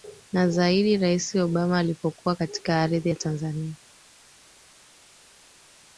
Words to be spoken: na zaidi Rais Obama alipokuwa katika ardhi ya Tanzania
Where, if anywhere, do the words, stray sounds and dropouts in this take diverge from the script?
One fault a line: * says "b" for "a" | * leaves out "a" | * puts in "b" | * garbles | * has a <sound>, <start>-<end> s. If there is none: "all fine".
all fine